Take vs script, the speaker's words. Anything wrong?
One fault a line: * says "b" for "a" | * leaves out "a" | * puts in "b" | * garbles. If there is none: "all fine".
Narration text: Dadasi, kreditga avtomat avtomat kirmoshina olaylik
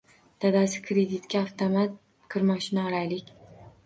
* leaves out "avtomat"